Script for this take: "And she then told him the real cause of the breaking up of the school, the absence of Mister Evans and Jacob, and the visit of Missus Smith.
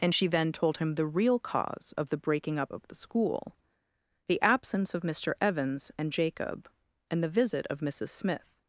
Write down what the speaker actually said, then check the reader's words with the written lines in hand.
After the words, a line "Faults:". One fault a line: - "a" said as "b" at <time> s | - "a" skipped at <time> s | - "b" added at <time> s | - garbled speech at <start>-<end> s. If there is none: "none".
"And she then told him the real cause of the breaking up of the school, the absence of Mister Evans and Jacob, and the visit of Missus Smith.
Faults:
none